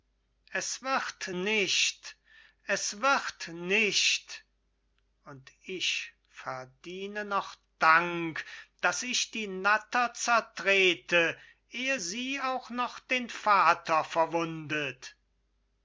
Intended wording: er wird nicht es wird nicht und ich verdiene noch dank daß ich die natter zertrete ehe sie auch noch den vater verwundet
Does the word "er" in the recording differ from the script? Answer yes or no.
yes